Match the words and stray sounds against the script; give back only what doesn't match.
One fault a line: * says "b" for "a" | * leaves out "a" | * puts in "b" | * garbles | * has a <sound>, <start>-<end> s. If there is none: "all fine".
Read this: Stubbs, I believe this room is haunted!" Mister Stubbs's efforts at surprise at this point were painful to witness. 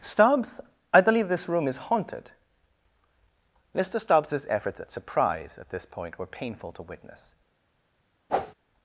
* has a whoosh, 8.3-8.5 s